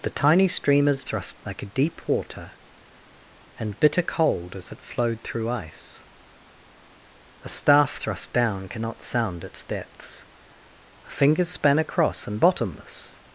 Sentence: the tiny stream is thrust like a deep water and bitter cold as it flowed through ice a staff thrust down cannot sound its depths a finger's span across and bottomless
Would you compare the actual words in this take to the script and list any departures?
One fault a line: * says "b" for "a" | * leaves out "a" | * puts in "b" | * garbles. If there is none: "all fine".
all fine